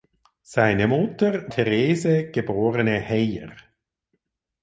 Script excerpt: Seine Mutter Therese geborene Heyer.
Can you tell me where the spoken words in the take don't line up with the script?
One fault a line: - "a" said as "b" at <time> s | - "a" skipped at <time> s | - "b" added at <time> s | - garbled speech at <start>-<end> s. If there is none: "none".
none